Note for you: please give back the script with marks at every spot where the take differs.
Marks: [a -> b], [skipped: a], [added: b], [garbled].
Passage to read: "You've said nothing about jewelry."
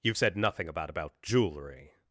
"You've said nothing about [added: about] jewelry."